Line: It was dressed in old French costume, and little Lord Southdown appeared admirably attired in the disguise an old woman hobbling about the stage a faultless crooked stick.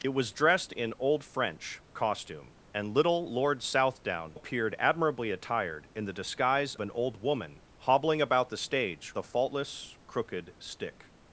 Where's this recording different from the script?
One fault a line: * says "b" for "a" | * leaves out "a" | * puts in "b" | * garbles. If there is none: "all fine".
all fine